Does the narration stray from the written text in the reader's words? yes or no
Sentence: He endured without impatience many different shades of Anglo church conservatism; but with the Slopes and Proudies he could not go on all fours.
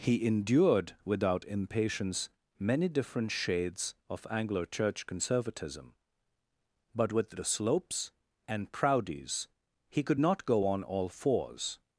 no